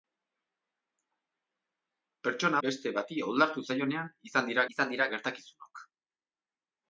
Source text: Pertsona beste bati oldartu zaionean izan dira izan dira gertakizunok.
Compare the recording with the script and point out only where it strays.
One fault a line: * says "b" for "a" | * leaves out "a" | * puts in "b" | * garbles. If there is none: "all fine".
all fine